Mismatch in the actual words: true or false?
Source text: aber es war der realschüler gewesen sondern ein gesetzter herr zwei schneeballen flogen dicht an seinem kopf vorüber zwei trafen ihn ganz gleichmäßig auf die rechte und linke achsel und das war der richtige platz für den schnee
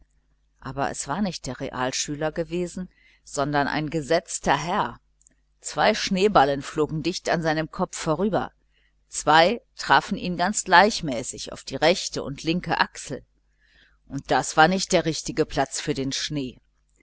true